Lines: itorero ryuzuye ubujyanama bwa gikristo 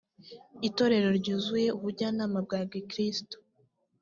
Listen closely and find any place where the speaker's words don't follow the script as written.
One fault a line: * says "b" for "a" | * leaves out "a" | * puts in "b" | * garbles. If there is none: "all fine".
all fine